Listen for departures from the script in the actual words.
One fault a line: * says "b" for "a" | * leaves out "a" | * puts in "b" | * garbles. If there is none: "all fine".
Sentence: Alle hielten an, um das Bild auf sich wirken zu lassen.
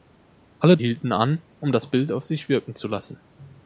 all fine